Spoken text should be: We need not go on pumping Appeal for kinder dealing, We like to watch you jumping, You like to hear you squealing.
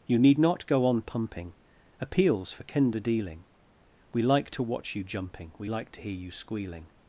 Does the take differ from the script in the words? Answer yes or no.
yes